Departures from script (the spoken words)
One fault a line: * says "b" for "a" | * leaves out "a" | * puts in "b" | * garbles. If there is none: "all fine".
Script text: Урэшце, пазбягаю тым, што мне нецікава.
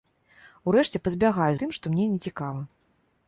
all fine